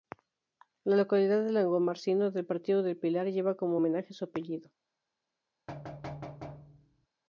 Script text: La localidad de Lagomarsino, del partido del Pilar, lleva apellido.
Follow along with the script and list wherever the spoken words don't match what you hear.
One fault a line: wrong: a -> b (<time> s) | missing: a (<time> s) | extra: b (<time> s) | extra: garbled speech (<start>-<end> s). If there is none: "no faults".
extra: como homenaje su (3.5 s)